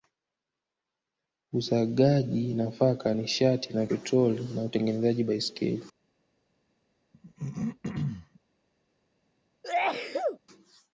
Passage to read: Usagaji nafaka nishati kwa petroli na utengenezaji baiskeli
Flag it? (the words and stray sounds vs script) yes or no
yes